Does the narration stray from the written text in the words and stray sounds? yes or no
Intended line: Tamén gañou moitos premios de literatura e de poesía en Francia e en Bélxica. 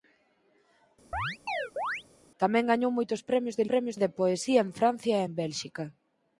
yes